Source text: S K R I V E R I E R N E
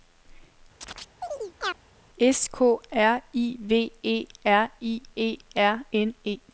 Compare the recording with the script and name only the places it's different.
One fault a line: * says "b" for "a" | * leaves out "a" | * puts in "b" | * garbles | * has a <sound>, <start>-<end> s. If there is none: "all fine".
* has a chirp, 0.8-1.8 s